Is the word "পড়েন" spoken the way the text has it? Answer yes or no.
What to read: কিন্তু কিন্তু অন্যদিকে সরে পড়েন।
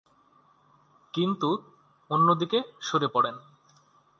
yes